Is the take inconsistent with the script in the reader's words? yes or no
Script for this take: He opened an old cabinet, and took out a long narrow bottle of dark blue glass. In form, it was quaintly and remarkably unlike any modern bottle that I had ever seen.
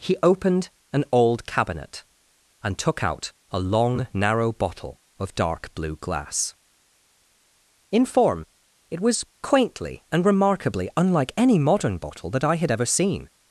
no